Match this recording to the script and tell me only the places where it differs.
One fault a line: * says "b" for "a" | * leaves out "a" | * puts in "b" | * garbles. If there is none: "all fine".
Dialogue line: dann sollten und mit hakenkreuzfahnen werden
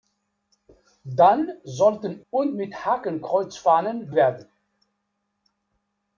all fine